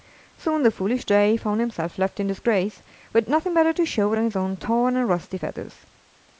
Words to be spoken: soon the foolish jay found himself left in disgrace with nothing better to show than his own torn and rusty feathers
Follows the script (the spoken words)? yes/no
yes